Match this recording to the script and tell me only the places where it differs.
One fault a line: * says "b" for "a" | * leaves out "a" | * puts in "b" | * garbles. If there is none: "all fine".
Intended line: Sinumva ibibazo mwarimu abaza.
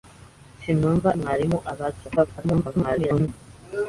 * leaves out "ibibazo"
* garbles